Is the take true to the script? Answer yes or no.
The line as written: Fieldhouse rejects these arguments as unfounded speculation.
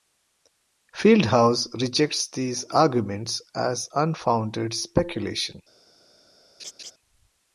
yes